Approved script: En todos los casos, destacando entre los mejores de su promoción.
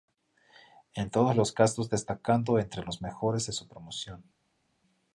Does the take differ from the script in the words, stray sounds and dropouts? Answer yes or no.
no